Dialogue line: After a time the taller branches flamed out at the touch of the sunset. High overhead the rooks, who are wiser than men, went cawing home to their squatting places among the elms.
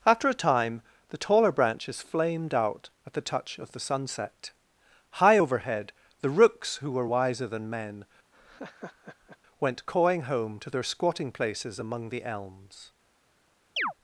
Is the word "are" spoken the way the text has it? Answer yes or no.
no